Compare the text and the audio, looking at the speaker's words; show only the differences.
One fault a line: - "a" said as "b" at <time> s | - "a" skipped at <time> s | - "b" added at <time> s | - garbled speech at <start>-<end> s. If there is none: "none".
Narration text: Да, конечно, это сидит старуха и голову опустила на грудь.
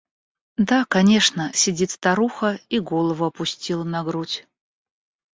- "это" skipped at 1.5 s